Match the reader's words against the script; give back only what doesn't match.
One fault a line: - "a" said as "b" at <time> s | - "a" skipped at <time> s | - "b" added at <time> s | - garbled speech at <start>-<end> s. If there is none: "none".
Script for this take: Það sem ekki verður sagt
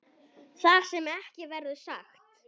none